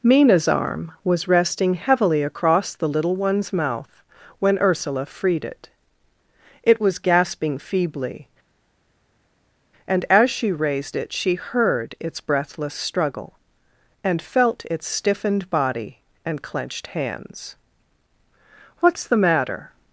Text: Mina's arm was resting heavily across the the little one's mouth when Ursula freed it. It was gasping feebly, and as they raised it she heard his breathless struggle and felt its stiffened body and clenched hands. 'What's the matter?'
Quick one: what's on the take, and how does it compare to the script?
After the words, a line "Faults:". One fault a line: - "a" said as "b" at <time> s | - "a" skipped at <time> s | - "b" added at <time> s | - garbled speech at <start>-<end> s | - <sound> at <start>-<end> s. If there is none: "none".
Mina's arm was resting heavily across the little one's mouth when Ursula freed it. It was gasping feebly, and as she raised it she heard its breathless struggle and felt its stiffened body and clenched hands. 'What's the matter?'
Faults:
- "the" skipped at 2.9 s
- "they" said as "she" at 10.3 s
- "his" said as "its" at 12.0 s